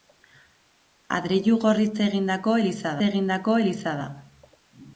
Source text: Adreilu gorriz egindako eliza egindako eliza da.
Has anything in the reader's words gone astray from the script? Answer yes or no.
no